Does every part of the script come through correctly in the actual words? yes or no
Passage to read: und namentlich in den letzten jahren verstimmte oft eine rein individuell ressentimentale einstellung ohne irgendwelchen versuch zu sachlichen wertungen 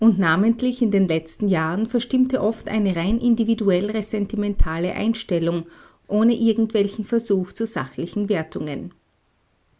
yes